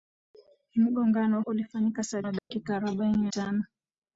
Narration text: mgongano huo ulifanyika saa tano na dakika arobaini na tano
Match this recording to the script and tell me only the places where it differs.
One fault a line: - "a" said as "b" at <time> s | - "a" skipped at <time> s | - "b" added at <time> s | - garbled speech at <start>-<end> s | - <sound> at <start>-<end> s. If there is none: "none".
- "huo" skipped at 1.4 s
- "tano" skipped at 2.2 s
- dropout at 2.4-2.5 s
- "na" skipped at 3.2 s